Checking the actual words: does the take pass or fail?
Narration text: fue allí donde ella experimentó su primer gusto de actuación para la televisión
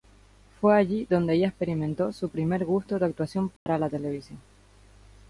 pass